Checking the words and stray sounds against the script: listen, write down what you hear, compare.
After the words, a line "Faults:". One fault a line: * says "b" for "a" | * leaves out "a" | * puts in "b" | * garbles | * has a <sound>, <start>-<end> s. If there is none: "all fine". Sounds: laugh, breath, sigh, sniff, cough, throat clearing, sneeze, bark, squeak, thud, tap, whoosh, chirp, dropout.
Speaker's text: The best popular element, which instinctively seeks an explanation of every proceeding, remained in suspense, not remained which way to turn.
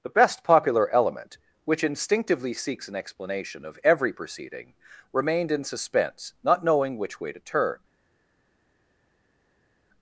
The best popular element, which instinctively seeks an explanation of every proceeding, remained in suspense, not knowing which way to turn.
Faults:
* says "knowing" for "remained"